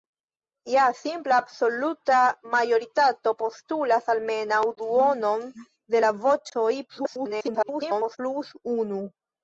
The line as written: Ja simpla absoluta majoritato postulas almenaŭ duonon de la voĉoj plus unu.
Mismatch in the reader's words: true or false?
true